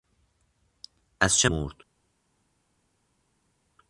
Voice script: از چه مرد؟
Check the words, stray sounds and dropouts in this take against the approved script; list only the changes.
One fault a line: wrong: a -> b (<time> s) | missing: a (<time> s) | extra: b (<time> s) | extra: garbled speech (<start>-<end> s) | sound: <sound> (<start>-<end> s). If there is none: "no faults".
no faults